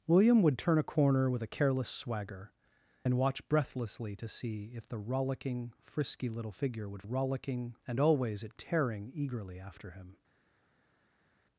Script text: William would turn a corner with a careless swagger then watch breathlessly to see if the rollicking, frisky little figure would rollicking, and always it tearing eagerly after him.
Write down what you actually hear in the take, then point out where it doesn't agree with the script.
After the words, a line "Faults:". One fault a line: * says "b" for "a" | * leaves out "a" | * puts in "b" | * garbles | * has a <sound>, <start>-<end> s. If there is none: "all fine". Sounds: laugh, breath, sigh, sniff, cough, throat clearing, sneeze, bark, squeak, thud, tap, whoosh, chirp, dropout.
William would turn a corner with a careless swagger then watch breathlessly to see if the rollicking, frisky little figure would rollicking, and always it tearing eagerly after him.
Faults:
all fine